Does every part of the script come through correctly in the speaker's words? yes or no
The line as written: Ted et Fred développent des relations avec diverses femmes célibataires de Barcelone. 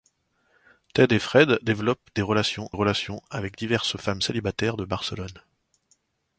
no